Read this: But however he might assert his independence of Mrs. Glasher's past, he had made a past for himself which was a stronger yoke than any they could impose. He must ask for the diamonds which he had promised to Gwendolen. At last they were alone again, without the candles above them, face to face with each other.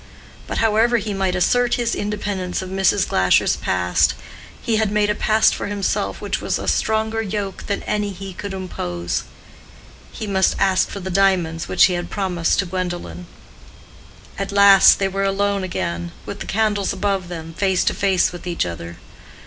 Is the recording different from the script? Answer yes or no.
yes